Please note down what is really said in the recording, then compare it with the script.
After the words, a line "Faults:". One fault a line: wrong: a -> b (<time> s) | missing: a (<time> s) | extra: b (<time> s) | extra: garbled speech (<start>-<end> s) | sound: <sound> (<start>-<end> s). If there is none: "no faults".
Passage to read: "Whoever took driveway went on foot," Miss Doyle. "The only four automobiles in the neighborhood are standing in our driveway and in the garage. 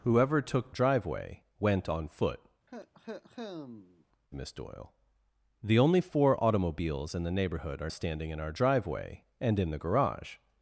"Whoever took driveway went on foot," Miss Doyle. "The only four automobiles in the neighborhood are standing in our driveway and in the garage.
Faults:
sound: cough (2.7-4.1 s)